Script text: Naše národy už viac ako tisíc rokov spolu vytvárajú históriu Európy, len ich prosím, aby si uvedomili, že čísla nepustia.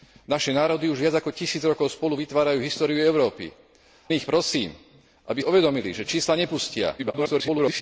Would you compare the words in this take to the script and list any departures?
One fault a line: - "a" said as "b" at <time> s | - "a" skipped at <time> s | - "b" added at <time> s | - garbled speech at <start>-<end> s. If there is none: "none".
- "len" skipped at 3.5 s
- "si" skipped at 5.4 s
- garbled speech at 7.0-7.8 s